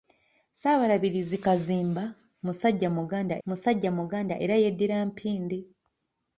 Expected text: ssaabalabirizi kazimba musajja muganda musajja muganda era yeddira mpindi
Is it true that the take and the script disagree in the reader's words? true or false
false